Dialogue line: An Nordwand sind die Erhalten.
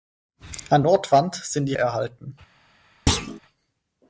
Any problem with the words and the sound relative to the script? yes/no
yes